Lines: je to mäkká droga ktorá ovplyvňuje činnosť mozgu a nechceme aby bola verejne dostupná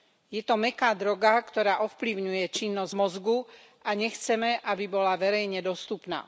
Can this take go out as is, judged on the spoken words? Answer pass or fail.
pass